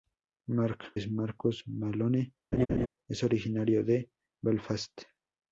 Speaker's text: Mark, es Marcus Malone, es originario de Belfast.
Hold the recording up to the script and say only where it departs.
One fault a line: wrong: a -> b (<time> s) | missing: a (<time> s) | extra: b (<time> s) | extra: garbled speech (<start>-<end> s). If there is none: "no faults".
no faults